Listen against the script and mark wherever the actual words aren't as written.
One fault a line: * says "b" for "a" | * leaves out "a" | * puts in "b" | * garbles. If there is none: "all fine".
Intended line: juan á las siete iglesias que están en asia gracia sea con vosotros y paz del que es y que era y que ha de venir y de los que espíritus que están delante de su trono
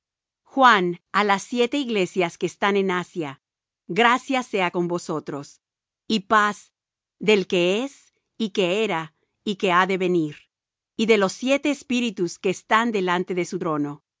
* says "siete" for "que"